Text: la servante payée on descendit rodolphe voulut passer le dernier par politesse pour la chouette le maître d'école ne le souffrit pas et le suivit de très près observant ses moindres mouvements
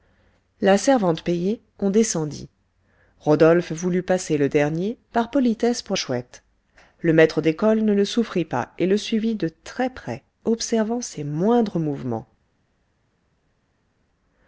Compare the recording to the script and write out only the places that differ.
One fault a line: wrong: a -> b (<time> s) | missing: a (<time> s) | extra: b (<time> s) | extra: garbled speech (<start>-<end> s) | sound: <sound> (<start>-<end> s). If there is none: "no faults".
missing: la (6.0 s)